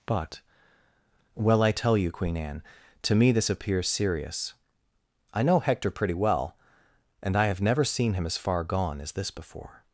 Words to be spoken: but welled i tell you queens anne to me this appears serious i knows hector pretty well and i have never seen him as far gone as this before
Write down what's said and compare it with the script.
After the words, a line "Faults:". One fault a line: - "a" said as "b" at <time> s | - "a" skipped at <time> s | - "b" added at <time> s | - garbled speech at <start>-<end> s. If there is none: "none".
but well i tell you queen anne to me this appears serious i know hector pretty well and i have never seen him as far gone as this before
Faults:
- "welled" said as "well" at 1.4 s
- "queens" said as "queen" at 2.1 s
- "knows" said as "know" at 5.4 s